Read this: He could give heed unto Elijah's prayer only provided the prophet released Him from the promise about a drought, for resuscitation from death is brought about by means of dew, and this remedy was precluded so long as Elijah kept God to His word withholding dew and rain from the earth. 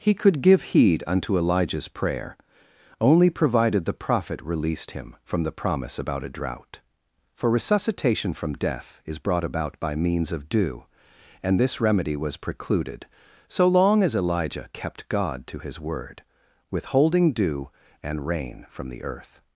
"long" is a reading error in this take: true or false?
false